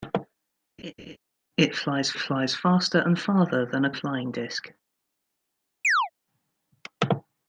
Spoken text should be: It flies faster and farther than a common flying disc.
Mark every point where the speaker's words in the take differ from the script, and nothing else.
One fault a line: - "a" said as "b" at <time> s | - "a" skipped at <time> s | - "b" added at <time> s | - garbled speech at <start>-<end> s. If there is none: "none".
- "flies" added at 2.2 s
- "common" skipped at 3.9 s